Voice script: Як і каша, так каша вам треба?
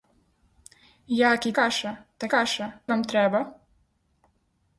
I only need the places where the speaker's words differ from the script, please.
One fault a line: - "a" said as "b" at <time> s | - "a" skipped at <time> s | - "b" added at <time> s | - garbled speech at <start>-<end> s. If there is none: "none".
none